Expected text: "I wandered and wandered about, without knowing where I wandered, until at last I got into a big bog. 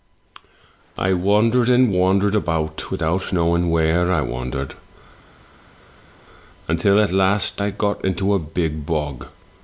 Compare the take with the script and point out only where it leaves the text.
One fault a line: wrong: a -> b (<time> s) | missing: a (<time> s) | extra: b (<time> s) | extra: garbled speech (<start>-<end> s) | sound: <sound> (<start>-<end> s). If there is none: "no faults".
no faults